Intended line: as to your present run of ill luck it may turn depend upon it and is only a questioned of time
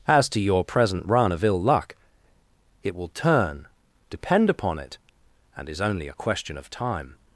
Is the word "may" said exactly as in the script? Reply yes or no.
no